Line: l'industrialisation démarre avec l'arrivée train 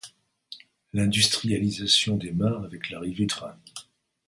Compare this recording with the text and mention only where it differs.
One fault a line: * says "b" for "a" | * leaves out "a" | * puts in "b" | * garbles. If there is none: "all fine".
all fine